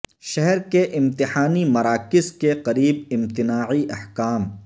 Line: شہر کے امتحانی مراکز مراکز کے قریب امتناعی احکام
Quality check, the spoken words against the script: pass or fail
fail